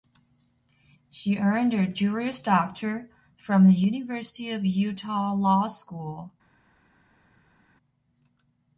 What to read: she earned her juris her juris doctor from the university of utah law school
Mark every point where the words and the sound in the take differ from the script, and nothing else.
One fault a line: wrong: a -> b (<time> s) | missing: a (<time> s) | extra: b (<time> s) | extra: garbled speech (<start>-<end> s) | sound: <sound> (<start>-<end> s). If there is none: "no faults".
missing: her juris (2.4 s)